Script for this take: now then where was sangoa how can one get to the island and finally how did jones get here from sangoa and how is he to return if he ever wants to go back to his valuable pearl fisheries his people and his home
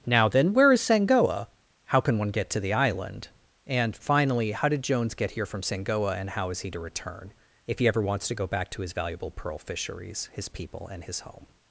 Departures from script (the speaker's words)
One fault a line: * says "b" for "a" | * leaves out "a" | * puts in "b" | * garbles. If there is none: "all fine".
* says "is" for "was"